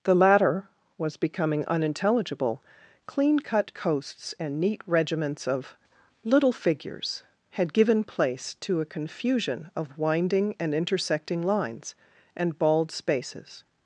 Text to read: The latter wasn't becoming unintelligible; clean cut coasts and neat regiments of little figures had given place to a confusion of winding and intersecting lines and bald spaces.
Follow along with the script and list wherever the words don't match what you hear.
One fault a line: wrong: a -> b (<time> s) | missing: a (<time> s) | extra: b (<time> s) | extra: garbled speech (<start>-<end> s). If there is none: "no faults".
wrong: wasn't -> was (1.0 s)